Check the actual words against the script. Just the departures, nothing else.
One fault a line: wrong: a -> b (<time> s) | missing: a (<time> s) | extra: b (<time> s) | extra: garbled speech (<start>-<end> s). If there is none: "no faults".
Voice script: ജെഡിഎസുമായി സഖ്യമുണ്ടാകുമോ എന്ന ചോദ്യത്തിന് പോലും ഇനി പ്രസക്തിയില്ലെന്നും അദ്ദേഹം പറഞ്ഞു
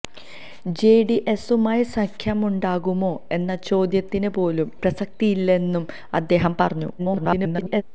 missing: ഇനി (4.7 s)
extra: garbled speech (7.0-7.8 s)